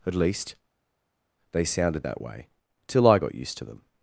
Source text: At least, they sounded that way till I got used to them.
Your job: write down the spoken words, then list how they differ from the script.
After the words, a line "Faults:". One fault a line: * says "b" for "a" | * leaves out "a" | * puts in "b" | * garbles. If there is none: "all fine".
At least, they sounded that way till I got used to them.
Faults:
all fine